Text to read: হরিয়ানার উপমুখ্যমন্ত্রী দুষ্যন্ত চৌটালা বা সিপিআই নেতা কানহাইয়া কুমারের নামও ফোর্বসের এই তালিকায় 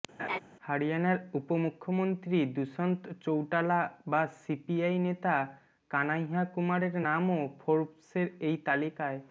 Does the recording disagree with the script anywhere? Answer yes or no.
no